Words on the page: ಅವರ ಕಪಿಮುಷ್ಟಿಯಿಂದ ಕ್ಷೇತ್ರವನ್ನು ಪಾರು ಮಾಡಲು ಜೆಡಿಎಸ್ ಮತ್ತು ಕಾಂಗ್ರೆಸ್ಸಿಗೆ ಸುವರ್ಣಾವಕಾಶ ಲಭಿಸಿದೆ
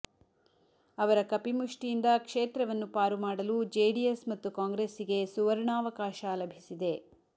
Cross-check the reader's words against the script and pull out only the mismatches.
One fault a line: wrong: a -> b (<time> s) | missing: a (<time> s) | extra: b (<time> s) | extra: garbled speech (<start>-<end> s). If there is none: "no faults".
no faults